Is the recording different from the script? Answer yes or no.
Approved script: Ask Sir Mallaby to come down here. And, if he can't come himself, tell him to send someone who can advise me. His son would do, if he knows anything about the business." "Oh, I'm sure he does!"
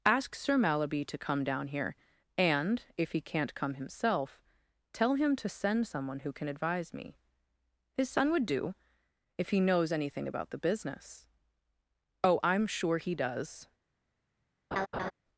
no